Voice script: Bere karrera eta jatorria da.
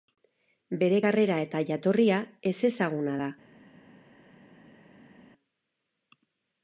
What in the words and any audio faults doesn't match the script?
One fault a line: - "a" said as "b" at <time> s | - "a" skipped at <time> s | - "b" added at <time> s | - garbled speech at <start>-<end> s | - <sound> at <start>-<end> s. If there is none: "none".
- "ezezaguna" added at 2.5 s